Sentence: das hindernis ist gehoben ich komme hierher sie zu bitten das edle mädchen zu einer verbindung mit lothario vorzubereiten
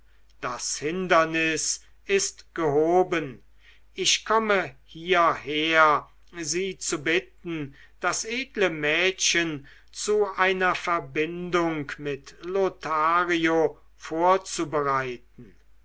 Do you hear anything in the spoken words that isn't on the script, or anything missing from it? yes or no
no